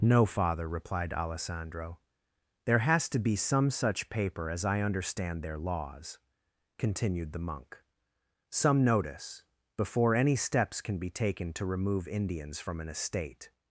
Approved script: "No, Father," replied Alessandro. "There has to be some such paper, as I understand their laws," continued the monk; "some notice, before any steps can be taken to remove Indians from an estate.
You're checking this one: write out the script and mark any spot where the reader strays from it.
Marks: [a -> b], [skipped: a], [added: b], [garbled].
"No, Father," replied Alessandro. "There has to be some such paper, as I understand their laws," continued the monk; "some notice, before any steps can be taken to remove Indians from an estate.